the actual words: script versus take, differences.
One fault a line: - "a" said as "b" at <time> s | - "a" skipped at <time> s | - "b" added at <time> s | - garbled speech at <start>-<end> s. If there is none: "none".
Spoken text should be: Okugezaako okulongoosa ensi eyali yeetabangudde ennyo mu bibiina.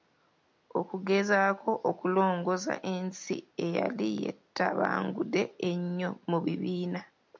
none